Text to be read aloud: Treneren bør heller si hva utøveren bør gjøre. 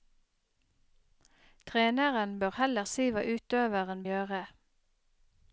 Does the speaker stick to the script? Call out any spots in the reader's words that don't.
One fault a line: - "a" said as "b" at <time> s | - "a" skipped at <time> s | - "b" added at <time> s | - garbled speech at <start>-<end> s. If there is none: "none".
- "bør" skipped at 4.0 s